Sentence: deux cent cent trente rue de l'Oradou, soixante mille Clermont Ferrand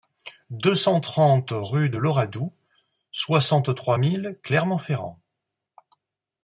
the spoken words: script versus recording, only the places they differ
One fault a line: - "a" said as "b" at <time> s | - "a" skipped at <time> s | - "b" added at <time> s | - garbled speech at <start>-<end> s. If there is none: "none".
- "cent" skipped at 1.0 s
- "trois" added at 3.7 s